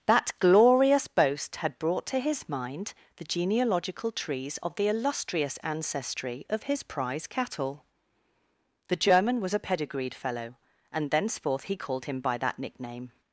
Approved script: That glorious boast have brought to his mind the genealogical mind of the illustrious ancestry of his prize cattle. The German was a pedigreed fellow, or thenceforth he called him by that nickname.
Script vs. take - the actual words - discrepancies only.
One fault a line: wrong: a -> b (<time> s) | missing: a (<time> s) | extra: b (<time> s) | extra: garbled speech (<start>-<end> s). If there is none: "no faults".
wrong: have -> had (1.6 s)
wrong: mind -> trees (4.1 s)
wrong: or -> and (10.9 s)